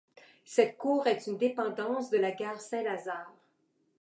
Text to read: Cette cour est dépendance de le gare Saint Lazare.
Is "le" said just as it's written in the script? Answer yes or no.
no